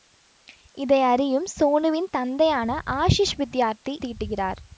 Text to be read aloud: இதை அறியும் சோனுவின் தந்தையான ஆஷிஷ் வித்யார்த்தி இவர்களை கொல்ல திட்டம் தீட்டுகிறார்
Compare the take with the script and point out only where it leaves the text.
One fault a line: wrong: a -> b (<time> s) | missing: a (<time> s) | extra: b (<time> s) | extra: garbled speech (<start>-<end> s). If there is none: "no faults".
missing: இவர்களை கொல்ல திட்டம் (3.9 s)